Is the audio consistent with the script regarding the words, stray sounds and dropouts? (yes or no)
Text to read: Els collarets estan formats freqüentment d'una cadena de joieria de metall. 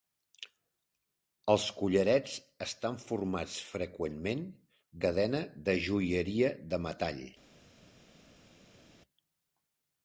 no